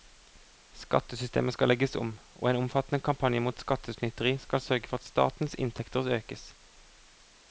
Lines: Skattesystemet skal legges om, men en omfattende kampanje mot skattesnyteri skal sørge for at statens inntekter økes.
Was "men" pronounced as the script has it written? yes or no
no